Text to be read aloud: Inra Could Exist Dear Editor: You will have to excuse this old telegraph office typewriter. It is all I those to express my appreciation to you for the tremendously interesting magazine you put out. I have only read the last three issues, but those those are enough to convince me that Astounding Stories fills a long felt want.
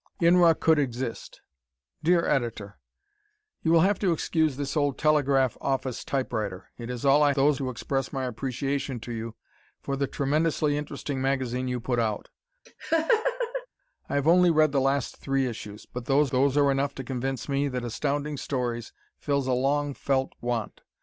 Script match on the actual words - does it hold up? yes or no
yes